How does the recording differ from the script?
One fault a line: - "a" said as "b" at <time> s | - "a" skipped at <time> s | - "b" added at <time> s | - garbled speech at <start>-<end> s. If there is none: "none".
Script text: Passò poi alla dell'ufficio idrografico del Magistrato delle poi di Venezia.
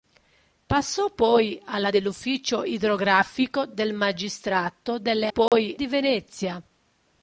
none